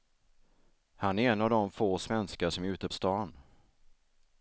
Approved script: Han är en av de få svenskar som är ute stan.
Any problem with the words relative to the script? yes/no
no